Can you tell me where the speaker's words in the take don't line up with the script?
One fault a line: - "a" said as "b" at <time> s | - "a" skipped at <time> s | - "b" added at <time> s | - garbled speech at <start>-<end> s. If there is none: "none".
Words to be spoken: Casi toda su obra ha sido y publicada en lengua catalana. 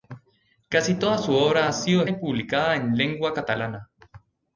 none